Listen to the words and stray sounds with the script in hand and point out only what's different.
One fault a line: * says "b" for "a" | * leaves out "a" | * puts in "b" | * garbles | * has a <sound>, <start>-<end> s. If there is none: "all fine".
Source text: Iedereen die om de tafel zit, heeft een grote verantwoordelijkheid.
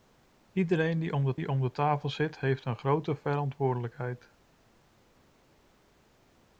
* puts in "die om de"